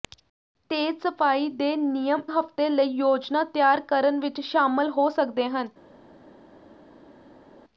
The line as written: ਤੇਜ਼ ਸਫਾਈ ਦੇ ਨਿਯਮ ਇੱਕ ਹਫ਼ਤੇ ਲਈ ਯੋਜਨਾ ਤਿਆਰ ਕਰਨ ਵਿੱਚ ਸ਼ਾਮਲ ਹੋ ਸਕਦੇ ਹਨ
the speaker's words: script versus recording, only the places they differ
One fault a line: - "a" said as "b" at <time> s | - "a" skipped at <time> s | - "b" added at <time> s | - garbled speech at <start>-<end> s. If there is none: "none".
- "ਇੱਕ" skipped at 2.2 s